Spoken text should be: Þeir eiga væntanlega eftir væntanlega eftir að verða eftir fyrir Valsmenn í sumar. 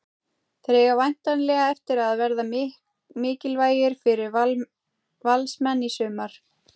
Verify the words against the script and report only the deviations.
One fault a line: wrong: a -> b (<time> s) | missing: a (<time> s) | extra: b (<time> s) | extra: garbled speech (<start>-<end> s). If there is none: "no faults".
missing: væntanlega eftir (2.0 s)
wrong: eftir -> mikilvægir (3.2 s)